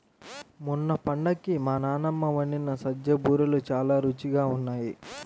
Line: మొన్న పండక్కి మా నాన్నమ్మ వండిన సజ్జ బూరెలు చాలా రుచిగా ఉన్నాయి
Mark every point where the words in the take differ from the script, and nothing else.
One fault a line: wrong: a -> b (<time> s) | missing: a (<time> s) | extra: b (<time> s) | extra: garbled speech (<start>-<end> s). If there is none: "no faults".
no faults